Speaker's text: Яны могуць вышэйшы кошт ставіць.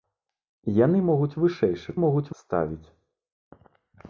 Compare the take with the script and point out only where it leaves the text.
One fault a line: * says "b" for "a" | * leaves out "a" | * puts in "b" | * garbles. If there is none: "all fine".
* says "могуць" for "кошт"